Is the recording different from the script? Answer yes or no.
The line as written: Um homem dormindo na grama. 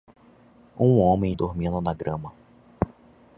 no